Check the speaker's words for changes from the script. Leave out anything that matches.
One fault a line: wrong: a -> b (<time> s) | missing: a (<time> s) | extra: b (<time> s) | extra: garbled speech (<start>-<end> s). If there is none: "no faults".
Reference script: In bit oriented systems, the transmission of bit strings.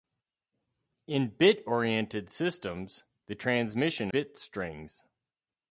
missing: of (4.1 s)